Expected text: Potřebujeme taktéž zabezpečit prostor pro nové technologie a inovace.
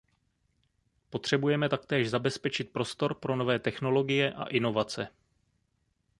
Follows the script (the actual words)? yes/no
yes